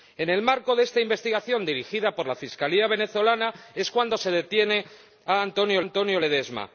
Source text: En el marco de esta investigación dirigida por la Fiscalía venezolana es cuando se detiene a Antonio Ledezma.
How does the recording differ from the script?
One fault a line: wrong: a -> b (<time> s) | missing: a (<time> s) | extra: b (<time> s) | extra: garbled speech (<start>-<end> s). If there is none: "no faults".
extra: Antonio (5.8 s)